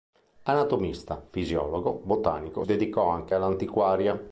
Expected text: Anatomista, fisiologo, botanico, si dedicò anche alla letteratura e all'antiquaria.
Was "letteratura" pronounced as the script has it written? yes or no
no